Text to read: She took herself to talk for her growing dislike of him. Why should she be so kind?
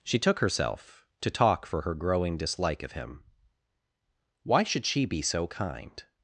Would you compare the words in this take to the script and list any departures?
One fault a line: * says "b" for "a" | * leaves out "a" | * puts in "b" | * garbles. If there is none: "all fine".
all fine